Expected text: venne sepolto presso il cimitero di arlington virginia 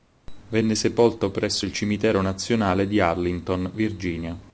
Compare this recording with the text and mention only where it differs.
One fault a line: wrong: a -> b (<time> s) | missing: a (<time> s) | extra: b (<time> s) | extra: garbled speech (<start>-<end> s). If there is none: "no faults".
extra: nazionale (2.2 s)